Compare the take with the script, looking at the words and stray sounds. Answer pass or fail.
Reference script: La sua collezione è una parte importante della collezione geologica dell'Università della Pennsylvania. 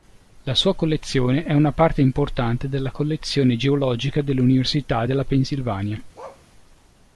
fail